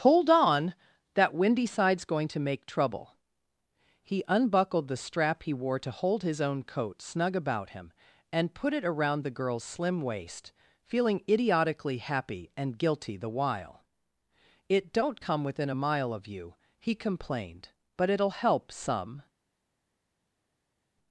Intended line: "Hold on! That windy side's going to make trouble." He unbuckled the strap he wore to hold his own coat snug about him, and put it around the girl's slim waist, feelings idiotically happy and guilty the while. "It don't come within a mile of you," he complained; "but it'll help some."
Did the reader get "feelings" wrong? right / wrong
wrong